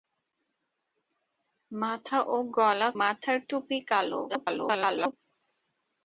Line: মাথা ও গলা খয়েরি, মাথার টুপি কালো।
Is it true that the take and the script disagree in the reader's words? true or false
true